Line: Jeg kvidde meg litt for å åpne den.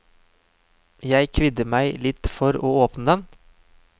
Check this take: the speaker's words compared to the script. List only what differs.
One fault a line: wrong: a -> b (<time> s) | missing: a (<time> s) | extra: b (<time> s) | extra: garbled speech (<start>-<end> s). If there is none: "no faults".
no faults